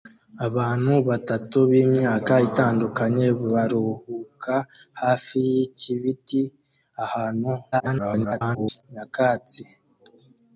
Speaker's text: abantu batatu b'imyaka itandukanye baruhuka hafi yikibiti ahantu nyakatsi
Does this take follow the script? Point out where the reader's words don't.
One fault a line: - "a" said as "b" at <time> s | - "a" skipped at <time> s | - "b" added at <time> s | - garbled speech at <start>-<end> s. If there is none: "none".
- garbled speech at 7.7-8.8 s